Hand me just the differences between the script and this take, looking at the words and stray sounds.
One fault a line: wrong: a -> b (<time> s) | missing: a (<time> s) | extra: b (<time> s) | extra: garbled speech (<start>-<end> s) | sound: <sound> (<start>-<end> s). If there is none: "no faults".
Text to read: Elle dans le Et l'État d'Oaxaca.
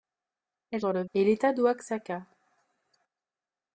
no faults